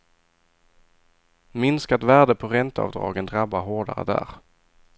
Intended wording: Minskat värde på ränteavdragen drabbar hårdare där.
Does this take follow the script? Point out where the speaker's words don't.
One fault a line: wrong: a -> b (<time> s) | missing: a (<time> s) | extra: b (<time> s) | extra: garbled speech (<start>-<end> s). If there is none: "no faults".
no faults